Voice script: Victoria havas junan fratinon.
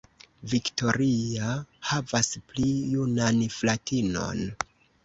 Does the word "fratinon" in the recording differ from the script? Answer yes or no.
no